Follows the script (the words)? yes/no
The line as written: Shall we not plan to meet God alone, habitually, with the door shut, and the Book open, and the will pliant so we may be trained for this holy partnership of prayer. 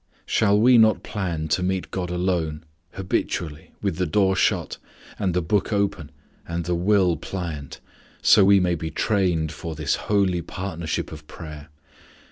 yes